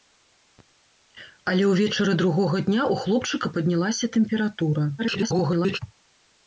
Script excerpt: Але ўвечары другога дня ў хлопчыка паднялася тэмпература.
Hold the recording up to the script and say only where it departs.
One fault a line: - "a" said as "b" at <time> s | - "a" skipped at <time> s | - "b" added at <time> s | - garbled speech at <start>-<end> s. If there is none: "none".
- garbled speech at 5.0-5.8 s